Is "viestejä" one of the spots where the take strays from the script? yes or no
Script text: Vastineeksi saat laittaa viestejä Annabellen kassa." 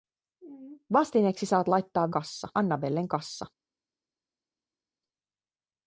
yes